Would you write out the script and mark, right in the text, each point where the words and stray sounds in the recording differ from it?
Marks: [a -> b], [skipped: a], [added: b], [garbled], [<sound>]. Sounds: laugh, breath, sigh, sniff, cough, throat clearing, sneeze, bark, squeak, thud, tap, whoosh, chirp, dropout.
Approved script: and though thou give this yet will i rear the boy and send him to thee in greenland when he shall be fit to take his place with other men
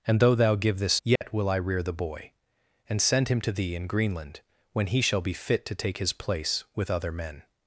and though thou give this yet [dropout] will i rear the boy and send him to thee in greenland when he shall be fit to take his place with other men